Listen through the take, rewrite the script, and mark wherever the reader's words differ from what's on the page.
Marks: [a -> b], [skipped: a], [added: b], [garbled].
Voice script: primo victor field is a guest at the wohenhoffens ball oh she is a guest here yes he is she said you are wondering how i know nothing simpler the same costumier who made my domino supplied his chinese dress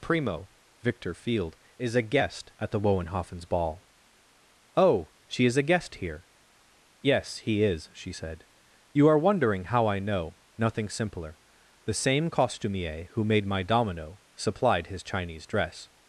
primo victor field is a guest at the wohenhoffens ball oh she is a guest here yes he is she said you are wondering how i know nothing simpler the same costumier who made my domino supplied his chinese dress